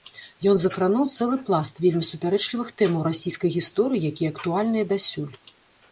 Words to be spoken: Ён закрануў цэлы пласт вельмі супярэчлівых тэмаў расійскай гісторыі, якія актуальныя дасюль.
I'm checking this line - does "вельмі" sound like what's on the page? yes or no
yes